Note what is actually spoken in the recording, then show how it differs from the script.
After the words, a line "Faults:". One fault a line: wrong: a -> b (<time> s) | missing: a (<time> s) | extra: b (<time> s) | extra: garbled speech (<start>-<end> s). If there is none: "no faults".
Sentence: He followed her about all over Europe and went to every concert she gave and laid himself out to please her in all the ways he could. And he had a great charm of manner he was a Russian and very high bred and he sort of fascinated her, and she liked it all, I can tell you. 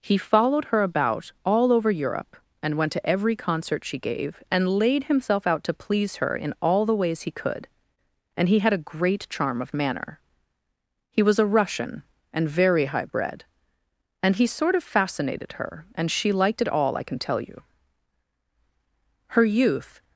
He followed her about all over Europe and went to every concert she gave and laid himself out to please her in all the ways he could. And he had a great charm of manner he was a Russian and very high bred and he sort of fascinated her, and she liked it all, I can tell you. Her youth
Faults:
extra: Her youth (19.3 s)